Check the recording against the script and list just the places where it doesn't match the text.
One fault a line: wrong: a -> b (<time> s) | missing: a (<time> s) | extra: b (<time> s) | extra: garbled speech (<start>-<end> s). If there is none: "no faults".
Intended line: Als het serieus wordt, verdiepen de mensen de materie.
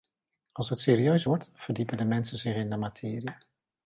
extra: zich in (2.4 s)